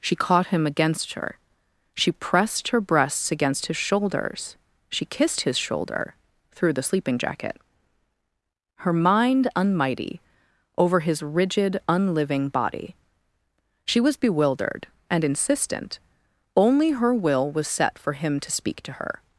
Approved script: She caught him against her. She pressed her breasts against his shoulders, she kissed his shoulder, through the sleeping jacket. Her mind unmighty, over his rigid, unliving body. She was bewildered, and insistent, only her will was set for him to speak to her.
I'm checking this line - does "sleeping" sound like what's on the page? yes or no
yes